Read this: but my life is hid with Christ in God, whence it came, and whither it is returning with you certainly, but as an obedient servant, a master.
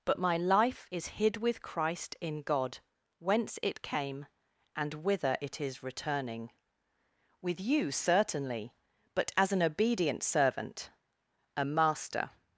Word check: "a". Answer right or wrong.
right